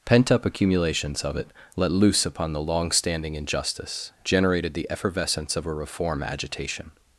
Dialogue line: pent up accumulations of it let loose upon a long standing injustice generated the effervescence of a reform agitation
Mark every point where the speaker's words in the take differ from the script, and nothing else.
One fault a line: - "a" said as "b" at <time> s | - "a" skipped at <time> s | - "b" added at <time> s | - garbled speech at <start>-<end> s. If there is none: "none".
- "a" said as "the" at 2.5 s